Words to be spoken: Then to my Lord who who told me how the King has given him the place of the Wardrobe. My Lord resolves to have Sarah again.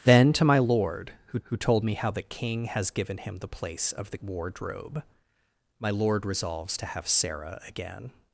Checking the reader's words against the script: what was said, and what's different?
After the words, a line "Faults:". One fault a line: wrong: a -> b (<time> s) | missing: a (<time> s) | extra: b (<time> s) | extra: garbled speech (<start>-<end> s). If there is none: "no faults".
Then to my Lord who who told me how the King has given him the place of the Wardrobe. My Lord resolves to have Sarah again.
Faults:
no faults